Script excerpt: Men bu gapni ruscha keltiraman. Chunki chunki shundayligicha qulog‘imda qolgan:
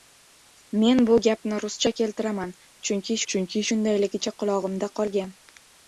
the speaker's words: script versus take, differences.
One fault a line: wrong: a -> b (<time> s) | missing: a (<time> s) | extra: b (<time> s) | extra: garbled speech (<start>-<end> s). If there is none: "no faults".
no faults